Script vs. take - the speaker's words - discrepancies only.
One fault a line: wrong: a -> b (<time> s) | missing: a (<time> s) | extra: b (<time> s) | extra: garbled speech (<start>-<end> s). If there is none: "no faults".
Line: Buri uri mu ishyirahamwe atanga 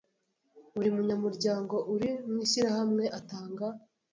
extra: munyamuryango (0.9 s)